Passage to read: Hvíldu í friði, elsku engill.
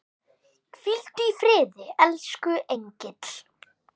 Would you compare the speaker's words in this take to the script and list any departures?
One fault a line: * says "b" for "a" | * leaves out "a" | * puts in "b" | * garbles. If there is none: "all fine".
all fine